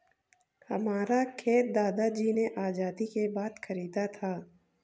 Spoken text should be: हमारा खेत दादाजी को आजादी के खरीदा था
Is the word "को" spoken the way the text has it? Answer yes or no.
no